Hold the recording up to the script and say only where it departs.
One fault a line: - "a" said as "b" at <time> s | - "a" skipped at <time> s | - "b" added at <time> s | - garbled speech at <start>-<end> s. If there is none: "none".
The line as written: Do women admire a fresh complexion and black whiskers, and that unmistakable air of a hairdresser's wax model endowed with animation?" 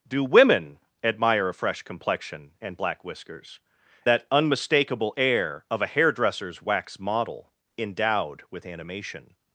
- "and" skipped at 3.6 s